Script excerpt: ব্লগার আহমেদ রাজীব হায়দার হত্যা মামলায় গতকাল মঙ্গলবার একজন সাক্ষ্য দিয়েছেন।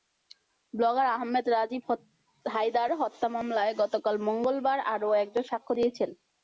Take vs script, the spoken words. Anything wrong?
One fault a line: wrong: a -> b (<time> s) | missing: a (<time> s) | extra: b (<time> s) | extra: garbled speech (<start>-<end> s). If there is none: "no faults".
extra: আরও (4.9 s)